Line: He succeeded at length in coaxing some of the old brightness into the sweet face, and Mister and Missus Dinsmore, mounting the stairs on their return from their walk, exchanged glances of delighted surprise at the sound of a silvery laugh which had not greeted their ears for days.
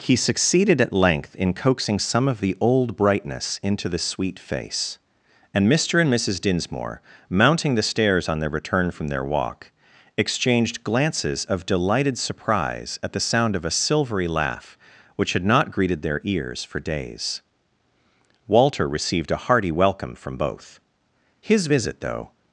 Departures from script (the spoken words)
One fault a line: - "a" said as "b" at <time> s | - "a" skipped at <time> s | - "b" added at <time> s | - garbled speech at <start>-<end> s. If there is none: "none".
- "Walter received a hearty welcome from both His visit though" added at 18.5 s